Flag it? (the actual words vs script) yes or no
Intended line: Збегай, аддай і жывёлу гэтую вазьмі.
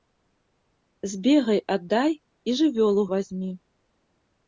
yes